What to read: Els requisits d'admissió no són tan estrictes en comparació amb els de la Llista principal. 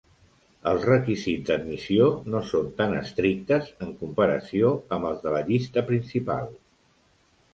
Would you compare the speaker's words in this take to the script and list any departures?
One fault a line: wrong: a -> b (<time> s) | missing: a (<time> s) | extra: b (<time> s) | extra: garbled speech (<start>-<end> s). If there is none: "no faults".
no faults